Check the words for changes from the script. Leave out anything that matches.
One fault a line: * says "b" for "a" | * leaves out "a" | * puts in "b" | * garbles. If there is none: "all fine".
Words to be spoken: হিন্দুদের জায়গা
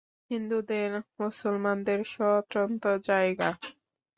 * puts in "মুসলমানদের স্বতন্ত্র"